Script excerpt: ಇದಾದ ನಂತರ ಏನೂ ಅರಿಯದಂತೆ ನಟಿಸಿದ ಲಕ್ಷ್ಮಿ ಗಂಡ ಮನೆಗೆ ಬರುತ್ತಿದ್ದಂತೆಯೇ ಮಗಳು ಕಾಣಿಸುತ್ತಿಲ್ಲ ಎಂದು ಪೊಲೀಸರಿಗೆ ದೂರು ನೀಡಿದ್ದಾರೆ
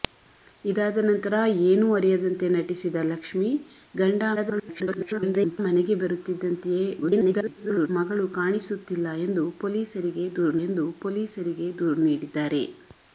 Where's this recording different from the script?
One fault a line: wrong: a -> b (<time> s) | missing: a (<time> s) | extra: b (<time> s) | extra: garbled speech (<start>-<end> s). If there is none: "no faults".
extra: garbled speech (4.4-5.6 s)
extra: garbled speech (7.0-7.9 s)
extra: ಎಂದು ಪೊಲೀಸರಿಗೆ ದೂರು (10.7 s)